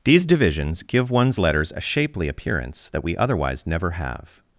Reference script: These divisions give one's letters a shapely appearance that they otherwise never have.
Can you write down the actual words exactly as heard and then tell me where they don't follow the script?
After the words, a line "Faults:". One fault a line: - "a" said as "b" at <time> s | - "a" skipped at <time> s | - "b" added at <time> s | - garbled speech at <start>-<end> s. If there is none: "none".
These divisions give one's letters a shapely appearance that we otherwise never have.
Faults:
- "they" said as "we" at 3.0 s